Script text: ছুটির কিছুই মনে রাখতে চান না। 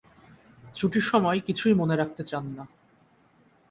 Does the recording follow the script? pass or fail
fail